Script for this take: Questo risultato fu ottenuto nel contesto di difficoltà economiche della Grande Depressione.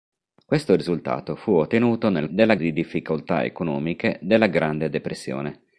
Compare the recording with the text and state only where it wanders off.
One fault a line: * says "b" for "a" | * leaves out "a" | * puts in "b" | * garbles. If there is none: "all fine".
* says "della" for "contesto"